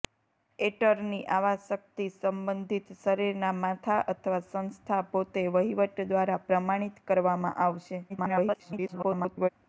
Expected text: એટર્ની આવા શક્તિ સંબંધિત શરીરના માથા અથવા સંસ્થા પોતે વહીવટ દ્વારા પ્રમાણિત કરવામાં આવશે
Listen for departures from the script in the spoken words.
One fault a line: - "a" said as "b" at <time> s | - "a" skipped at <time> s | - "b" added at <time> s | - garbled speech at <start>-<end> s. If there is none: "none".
- garbled speech at 8.1-9.5 s